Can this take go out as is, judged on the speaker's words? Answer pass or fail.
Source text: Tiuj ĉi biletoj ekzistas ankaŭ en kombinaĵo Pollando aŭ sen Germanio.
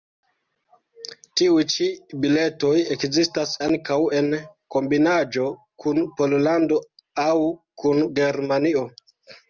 fail